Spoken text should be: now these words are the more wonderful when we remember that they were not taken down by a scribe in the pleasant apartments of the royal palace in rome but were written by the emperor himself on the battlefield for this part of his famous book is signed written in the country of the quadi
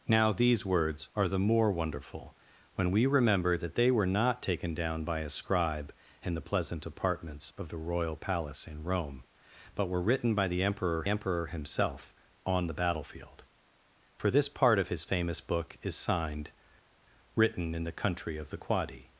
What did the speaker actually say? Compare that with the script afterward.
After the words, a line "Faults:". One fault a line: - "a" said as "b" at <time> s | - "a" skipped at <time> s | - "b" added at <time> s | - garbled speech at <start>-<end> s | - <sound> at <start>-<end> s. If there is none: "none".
now these words are the more wonderful when we remember that they were not taken down by a scribe in the pleasant apartments of the royal palace in rome but were written by the emperor emperor himself on the battlefield for this part of his famous book is signed written in the country of the quadi
Faults:
- "emperor" added at 11.1 s